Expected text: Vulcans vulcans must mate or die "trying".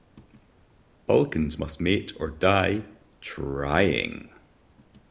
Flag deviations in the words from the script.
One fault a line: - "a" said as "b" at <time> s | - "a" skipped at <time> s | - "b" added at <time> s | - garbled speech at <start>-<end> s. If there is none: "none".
- "vulcans" skipped at 1.6 s